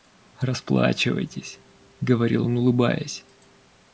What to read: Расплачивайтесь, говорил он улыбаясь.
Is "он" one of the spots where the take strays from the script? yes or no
no